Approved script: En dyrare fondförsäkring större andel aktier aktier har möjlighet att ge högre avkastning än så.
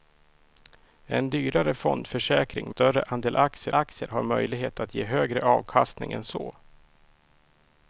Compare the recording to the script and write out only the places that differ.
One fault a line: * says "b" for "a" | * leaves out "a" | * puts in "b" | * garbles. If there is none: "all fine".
all fine